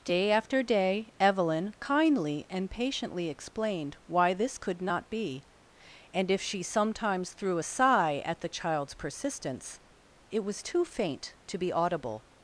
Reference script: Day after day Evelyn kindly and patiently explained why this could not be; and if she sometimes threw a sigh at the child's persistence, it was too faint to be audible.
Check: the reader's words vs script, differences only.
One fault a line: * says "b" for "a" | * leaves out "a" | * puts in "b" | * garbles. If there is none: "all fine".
all fine